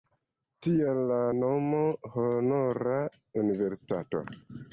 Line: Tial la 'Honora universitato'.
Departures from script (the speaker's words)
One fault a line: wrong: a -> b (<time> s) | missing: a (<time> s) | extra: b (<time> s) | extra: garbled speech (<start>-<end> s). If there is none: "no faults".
extra: nomo (1.4 s)